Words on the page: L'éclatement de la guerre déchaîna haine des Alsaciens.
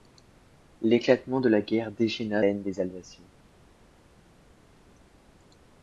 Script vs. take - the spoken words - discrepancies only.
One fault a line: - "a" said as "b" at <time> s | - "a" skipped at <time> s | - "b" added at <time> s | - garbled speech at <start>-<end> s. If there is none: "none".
none